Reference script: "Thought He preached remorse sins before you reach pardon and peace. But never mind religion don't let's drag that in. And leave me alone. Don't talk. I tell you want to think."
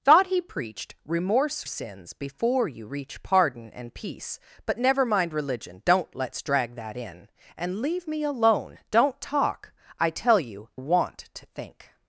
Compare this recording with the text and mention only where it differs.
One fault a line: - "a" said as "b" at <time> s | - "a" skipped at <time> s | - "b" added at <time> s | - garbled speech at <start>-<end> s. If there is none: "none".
none